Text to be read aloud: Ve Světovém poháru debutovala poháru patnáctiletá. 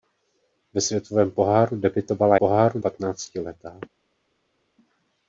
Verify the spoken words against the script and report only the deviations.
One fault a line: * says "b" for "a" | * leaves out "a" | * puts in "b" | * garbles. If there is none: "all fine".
all fine